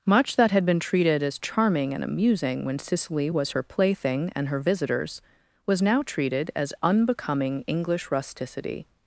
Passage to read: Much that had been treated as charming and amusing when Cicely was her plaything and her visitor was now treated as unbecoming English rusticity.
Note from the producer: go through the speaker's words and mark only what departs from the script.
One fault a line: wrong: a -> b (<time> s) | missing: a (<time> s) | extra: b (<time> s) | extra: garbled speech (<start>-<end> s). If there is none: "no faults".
wrong: visitor -> visitors (4.6 s)